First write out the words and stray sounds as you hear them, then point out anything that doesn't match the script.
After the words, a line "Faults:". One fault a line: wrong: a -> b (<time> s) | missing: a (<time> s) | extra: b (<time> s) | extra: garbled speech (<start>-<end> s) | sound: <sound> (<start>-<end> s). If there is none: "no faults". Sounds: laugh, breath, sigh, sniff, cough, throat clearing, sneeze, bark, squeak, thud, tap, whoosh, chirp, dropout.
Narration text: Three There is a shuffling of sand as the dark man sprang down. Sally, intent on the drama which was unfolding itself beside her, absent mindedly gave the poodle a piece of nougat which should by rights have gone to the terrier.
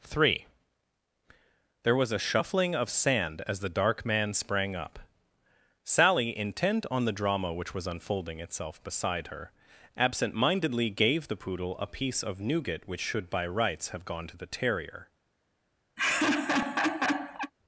Three There was a shuffling of sand as the dark man sprang up. Sally, intent on the drama which was unfolding itself beside her, absent mindedly gave the poodle a piece of nougat which should by rights have gone to the terrier.
Faults:
wrong: is -> was (1.9 s)
wrong: down -> up (4.8 s)
sound: laugh (16.0-17.5 s)